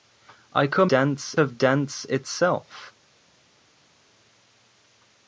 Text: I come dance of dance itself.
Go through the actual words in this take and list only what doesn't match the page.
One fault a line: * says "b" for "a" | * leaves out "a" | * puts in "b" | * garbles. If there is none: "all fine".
all fine